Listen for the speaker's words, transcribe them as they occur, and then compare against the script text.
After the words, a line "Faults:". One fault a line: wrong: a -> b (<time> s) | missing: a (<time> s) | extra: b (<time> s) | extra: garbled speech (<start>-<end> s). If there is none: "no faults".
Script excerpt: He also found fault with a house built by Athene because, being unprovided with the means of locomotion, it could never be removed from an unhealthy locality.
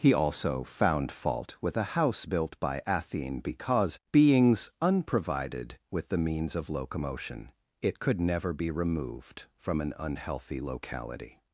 He also found fault with a house built by Athene because, beings unprovided with the means of locomotion, it could never be removed from an unhealthy locality.
Faults:
wrong: being -> beings (4.1 s)